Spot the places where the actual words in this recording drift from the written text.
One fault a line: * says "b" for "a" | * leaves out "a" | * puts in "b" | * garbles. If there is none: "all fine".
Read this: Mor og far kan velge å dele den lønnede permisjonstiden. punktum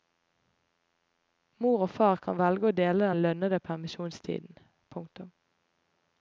all fine